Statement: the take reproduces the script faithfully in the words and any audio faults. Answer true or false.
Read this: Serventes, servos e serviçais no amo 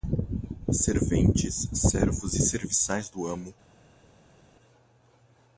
false